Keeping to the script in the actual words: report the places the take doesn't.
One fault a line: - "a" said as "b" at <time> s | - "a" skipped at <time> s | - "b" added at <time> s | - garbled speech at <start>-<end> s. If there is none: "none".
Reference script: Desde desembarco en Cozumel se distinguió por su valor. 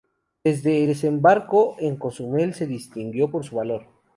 none